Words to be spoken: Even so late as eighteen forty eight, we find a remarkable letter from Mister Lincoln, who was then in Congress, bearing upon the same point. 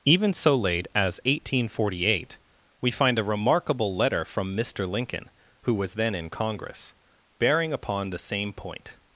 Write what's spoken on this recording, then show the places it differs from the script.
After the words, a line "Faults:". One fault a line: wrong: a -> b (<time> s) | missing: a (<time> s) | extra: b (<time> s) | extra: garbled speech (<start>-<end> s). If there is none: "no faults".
Even so late as eighteen forty eight, we find a remarkable letter from Mister Lincoln, who was then in Congress, bearing upon the same point.
Faults:
no faults